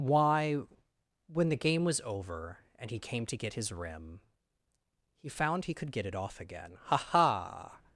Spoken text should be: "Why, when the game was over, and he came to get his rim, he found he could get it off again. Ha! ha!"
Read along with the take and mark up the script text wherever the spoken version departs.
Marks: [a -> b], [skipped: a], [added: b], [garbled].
"Why, when the game was over, and he came to get his rim, he found he could get it off again. Ha! ha!"